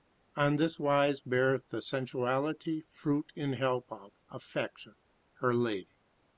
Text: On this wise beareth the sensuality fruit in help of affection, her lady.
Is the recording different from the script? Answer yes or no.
no